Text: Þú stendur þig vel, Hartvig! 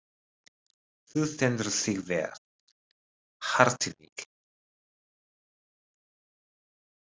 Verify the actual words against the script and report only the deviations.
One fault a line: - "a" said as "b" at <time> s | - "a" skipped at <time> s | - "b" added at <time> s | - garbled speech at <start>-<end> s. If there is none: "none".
none